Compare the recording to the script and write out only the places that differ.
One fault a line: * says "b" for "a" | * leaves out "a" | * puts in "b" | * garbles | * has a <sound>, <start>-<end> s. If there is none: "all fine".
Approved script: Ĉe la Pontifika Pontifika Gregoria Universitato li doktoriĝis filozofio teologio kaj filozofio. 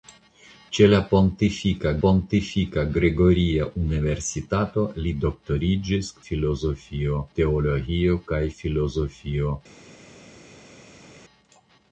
all fine